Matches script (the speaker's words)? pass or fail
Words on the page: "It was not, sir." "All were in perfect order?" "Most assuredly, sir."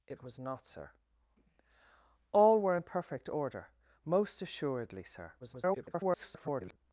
fail